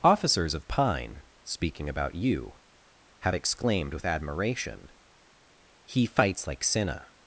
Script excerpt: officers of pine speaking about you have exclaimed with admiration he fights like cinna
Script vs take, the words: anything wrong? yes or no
no